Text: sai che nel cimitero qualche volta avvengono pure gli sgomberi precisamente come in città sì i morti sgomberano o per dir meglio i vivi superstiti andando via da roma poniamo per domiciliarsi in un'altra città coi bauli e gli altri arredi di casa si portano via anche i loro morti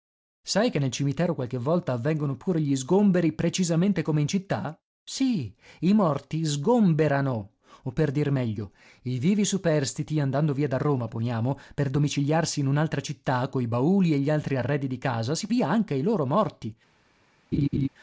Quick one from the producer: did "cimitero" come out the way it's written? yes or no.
yes